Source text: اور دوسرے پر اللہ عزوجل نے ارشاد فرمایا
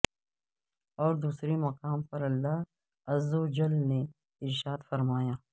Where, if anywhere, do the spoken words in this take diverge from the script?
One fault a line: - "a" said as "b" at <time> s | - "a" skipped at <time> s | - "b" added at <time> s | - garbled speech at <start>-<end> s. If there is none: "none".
- "مقام" added at 1.6 s